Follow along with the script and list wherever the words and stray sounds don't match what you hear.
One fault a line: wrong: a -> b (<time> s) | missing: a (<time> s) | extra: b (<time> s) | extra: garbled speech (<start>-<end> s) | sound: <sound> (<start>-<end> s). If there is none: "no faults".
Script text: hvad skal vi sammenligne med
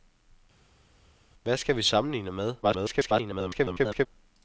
extra: garbled speech (2.6-4.1 s)